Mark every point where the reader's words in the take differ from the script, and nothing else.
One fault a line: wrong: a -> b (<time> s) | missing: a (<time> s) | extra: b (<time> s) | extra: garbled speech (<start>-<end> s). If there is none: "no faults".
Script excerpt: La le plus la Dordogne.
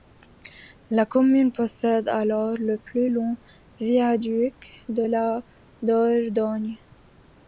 extra: commune possède alors (1.1 s)
extra: long viaduc de (3.1 s)